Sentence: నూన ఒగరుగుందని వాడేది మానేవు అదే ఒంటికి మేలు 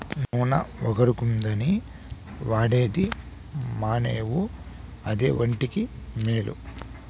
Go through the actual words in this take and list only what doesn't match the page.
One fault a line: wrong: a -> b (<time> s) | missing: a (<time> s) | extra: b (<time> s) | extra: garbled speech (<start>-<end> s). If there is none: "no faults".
no faults